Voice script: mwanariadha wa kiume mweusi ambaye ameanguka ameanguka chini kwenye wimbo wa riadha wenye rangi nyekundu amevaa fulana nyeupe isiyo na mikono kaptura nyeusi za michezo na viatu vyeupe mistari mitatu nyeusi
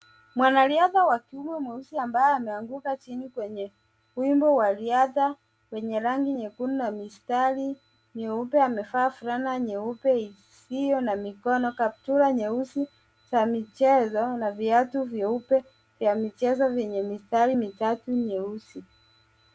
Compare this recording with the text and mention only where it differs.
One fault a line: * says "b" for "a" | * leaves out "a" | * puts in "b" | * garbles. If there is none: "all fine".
* leaves out "ameanguka"
* puts in "na mistari nyeupe"
* puts in "vya michezo vyenye"